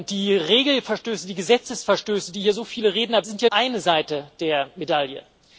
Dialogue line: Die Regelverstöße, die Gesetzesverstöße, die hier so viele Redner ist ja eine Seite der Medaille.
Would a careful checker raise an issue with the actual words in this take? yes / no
no